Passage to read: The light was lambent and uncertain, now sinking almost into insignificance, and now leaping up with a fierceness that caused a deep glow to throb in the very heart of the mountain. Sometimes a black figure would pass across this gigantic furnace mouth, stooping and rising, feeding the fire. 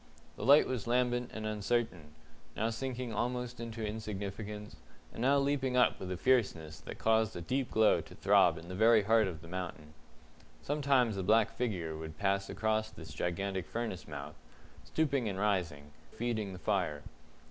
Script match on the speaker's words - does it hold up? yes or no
yes